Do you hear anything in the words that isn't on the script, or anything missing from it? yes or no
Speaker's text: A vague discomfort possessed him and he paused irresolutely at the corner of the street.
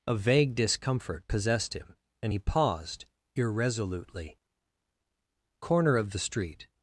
yes